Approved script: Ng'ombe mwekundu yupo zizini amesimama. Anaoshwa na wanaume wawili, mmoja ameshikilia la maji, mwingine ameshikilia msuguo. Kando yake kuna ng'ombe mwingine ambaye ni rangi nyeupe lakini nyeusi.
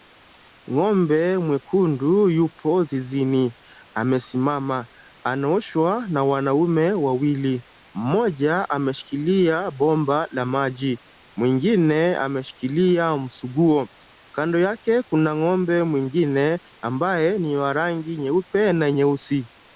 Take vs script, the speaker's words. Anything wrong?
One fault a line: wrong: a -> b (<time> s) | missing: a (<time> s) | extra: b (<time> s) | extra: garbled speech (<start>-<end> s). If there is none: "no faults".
extra: bomba (9.7 s)
extra: wa (17.6 s)
wrong: lakini -> na (18.7 s)